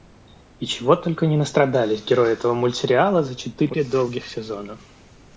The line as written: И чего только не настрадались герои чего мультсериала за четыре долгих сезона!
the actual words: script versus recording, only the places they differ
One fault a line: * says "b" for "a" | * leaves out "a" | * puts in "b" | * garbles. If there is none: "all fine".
* says "этого" for "чего"